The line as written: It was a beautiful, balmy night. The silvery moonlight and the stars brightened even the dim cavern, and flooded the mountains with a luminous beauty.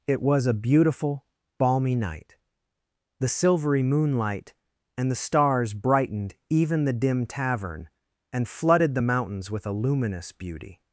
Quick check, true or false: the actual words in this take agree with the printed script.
false